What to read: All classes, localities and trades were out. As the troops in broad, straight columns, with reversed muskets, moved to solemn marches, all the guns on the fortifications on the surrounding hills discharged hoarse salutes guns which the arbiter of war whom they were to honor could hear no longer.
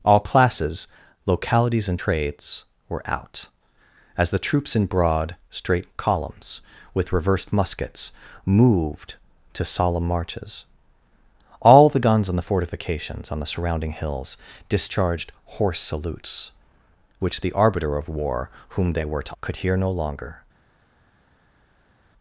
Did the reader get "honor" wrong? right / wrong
wrong